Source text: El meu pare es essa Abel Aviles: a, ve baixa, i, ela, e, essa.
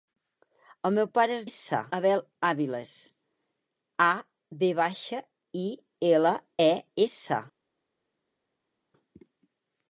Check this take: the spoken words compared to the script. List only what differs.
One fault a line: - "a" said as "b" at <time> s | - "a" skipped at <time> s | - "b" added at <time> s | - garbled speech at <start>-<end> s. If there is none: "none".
none